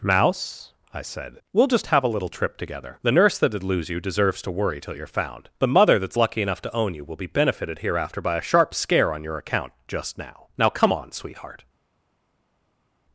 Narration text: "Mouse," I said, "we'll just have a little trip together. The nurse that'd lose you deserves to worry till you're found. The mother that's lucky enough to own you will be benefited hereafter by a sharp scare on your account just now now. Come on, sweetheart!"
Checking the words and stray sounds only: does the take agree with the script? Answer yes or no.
yes